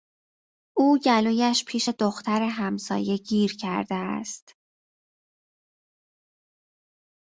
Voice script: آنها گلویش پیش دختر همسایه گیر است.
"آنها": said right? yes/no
no